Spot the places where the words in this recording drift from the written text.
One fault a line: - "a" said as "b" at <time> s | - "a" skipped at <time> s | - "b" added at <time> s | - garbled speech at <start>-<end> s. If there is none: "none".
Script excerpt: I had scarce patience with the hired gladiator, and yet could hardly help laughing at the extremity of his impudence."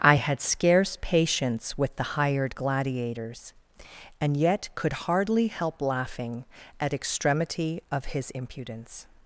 - "gladiator" said as "gladiators" at 2.5 s
- "the" skipped at 6.9 s